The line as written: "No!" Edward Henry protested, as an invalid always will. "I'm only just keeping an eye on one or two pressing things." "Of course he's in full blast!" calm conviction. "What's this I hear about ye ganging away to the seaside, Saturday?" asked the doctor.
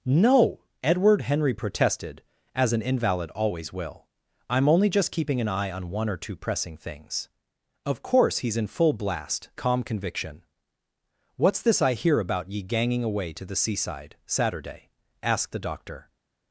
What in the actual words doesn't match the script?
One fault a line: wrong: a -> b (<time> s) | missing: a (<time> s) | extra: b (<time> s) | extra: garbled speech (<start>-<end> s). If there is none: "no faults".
no faults